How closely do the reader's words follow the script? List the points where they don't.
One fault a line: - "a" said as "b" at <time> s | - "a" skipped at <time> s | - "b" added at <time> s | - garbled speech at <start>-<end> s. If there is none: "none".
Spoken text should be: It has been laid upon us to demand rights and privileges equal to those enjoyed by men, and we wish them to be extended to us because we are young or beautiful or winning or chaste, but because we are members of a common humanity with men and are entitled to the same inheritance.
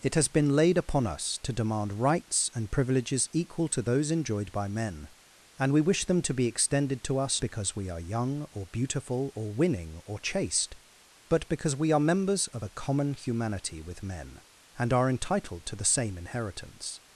none